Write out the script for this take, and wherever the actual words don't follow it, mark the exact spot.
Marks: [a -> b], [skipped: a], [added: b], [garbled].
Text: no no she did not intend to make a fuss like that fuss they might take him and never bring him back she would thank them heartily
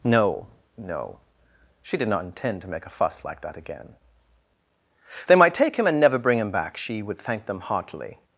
no no she did not intend to make a fuss like that [fuss -> again] they might take him and never bring him back she would thank them heartily